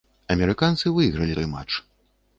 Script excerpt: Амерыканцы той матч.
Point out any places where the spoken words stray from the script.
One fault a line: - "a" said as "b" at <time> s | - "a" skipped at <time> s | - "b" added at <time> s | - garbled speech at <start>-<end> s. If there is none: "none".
- "выйгралі" added at 0.9 s